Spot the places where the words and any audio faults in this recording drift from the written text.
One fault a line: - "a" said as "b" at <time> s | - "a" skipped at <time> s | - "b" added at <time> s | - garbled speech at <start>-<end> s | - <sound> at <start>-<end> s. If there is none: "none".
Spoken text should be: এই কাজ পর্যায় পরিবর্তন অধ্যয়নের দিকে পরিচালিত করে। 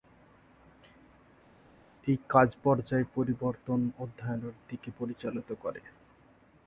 none